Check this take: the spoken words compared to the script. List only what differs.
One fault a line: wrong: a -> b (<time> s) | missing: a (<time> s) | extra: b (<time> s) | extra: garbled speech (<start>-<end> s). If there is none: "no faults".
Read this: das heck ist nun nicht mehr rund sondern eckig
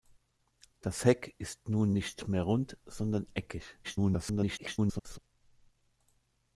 extra: garbled speech (3.8-5.2 s)